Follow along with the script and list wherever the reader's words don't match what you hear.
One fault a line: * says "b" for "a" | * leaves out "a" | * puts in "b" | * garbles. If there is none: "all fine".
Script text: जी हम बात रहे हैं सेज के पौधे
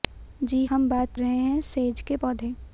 all fine